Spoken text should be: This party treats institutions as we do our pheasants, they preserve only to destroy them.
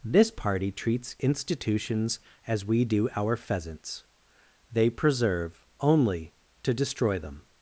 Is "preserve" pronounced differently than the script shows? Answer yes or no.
no